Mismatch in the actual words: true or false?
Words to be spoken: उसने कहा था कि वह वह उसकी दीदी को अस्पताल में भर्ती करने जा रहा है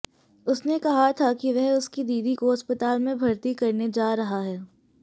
true